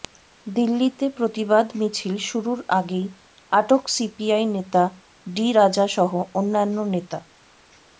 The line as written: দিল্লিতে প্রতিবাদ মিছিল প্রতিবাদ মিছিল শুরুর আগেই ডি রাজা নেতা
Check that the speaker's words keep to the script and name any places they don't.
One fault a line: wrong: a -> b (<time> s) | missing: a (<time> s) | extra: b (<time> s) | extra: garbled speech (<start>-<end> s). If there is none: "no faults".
wrong: প্রতিবাদ মিছিল শুরুর আগেই -> শুরুর আগেই আটক সিপিআই নেতা (2.3 s)
extra: সহ অন্যান্য (5.9 s)